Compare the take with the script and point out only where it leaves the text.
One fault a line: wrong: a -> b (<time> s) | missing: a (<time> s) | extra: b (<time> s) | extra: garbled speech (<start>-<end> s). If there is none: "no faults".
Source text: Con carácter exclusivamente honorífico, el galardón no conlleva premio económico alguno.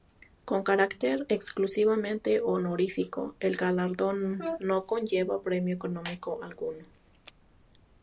no faults